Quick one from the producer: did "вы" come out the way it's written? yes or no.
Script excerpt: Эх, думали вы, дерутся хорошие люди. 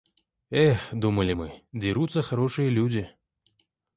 no